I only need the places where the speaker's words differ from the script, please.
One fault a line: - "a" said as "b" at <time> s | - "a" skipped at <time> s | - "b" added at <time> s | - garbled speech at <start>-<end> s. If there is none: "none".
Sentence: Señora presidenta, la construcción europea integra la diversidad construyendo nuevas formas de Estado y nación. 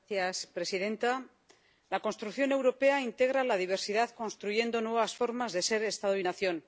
- "ser" added at 5.7 s